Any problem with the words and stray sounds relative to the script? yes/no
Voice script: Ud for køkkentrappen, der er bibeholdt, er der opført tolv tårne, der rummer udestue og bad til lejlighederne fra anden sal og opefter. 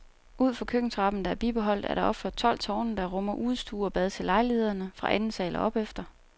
no